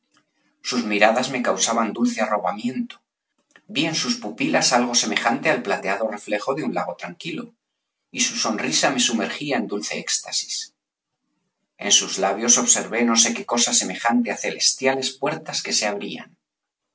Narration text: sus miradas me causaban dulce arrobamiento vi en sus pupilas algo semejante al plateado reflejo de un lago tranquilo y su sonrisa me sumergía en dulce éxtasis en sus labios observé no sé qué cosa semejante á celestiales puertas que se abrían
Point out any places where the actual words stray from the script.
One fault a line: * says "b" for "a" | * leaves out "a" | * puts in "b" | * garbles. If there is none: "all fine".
all fine